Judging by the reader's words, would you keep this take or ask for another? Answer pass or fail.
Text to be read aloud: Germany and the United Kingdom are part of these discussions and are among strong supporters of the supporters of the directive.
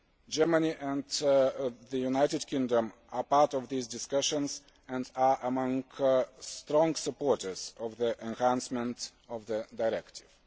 fail